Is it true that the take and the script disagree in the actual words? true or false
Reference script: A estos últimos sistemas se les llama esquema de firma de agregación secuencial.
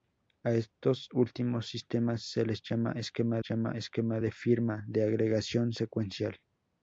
true